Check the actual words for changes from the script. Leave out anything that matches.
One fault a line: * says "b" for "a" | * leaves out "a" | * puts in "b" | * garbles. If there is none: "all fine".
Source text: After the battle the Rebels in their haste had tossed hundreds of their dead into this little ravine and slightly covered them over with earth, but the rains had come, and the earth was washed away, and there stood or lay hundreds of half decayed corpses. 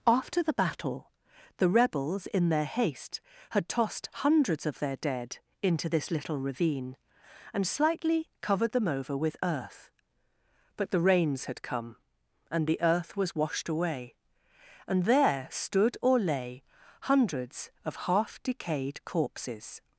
all fine